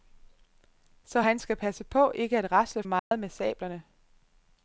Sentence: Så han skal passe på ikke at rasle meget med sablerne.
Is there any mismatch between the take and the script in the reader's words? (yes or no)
no